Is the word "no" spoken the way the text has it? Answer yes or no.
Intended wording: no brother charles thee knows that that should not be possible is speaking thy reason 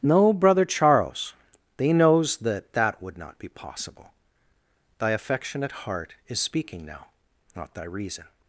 yes